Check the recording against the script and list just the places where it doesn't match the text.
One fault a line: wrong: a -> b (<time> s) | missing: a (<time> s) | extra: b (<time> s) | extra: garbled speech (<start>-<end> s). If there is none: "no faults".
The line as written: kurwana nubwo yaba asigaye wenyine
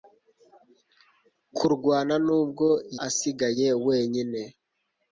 missing: yaba (2.7 s)